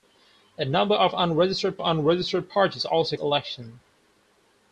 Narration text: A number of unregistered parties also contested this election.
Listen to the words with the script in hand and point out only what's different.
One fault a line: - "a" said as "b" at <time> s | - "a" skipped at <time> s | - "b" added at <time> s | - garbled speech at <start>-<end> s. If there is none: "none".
- "unregistered" added at 1.8 s
- "contested this" skipped at 3.2 s